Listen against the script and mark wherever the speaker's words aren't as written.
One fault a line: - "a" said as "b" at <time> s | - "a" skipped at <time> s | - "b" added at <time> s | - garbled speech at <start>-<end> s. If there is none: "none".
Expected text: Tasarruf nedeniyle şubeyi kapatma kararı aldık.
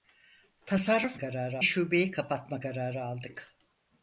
- "nedeniyle" said as "kararı" at 1.2 s